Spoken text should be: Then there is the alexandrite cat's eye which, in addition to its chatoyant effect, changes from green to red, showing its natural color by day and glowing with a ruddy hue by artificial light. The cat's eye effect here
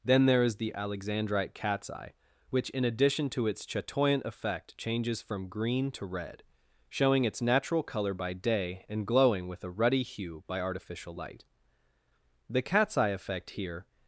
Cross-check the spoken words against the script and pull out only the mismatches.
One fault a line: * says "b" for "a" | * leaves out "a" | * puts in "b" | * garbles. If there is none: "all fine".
all fine